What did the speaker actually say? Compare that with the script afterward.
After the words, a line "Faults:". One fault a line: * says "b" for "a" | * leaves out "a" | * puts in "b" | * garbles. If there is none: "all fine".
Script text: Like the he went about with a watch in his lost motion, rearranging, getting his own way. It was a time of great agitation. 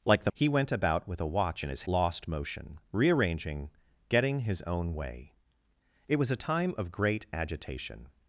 Like the he went about with a watch in his lost motion, rearranging, getting his own way. It was a time of great agitation.
Faults:
all fine